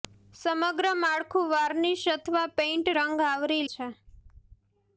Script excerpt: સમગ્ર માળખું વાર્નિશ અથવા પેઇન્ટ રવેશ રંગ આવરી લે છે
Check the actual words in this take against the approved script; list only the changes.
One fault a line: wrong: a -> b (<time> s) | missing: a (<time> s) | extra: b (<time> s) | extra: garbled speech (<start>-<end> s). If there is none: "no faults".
missing: રવેશ (2.9 s)
missing: લે (3.6 s)